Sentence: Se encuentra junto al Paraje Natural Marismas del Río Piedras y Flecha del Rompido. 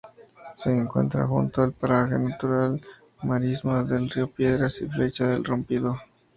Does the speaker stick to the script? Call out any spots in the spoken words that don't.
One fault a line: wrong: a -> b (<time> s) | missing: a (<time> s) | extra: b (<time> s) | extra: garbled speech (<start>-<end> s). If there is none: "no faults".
no faults